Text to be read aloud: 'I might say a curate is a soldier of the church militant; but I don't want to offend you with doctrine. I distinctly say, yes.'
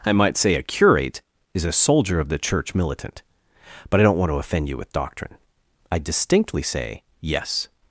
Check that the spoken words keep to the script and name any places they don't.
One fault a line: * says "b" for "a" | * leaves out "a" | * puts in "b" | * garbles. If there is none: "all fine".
all fine